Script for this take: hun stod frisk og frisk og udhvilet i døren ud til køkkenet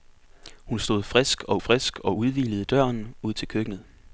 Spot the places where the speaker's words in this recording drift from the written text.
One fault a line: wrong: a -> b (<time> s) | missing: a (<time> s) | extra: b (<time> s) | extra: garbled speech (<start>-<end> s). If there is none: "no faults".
no faults